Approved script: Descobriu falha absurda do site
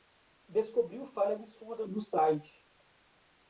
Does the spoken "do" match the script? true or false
true